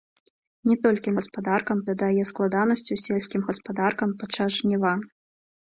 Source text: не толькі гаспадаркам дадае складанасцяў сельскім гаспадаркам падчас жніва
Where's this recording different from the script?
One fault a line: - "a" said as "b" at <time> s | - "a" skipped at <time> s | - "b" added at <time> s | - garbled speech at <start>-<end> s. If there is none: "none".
none